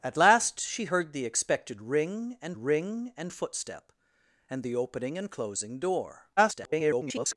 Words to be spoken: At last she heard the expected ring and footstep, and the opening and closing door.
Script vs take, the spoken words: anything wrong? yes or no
yes